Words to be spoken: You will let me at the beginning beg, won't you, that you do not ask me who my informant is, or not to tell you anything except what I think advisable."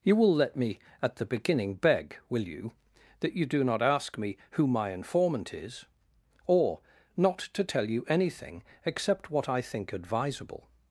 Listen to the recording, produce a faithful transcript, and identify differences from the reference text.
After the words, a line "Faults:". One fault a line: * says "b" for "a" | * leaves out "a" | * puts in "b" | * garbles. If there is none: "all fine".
You will let me at the beginning beg, will you, that you do not ask me who my informant is, or not to tell you anything except what I think advisable."
Faults:
* says "will" for "won't"